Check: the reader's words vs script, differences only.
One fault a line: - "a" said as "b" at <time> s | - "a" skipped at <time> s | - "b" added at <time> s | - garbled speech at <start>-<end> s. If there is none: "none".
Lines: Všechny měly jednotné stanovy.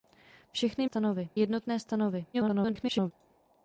- "měly" said as "stanovy" at 0.8 s
- garbled speech at 2.3-3.1 s